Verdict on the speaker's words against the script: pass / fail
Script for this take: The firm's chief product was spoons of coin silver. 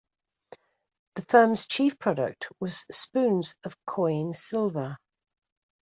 pass